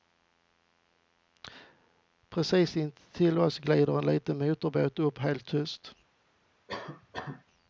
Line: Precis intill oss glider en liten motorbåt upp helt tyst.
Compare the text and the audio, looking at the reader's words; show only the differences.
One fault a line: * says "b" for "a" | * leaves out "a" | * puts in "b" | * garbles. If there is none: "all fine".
all fine